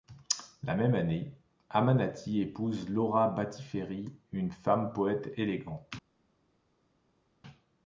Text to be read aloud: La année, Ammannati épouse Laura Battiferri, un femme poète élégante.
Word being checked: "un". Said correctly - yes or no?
no